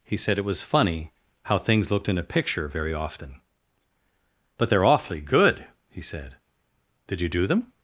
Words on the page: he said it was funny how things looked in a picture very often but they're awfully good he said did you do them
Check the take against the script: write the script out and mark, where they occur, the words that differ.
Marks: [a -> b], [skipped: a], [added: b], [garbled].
he said it was funny how things looked in a picture very often but they're awfully good he said did you do them